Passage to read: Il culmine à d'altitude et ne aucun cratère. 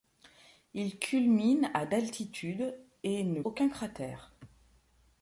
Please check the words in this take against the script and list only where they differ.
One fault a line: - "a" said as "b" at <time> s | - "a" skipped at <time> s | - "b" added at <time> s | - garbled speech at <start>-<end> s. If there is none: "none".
none